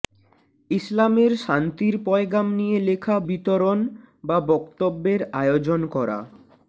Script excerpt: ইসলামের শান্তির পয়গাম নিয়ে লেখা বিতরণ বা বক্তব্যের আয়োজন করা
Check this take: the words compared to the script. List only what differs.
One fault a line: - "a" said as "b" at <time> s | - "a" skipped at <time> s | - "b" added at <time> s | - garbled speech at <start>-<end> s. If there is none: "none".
none